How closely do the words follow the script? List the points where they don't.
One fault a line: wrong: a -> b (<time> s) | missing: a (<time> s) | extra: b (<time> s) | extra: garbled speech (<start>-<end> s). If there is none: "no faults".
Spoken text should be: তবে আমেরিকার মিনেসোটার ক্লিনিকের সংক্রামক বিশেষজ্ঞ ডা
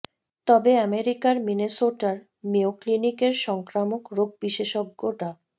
extra: মেয়ো (2.4 s)
extra: রোগ (4.2 s)